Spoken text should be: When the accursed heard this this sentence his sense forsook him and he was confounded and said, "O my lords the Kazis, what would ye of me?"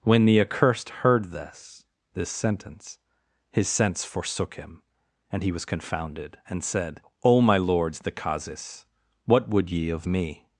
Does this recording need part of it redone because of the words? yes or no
no